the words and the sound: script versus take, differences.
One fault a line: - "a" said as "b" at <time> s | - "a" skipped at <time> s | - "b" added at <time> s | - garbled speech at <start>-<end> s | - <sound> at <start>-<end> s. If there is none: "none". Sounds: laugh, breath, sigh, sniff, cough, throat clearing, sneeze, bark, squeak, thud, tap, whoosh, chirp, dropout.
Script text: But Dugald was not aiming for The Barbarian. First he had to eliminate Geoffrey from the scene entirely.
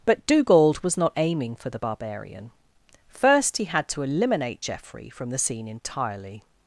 none